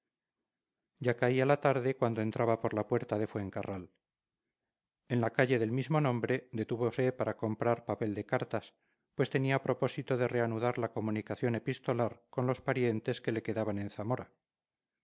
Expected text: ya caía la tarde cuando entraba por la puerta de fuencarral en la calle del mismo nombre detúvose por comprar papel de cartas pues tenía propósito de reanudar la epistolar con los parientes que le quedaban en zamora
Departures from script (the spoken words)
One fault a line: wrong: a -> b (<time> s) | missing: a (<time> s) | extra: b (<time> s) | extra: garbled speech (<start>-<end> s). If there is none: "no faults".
wrong: por -> para (7.1 s)
extra: comunicación (10.9 s)